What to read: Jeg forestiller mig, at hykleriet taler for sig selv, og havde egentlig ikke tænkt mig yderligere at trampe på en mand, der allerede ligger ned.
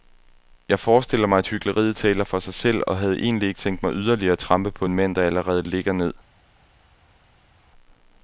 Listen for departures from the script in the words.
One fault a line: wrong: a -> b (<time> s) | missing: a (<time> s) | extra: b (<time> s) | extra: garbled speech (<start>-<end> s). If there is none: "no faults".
no faults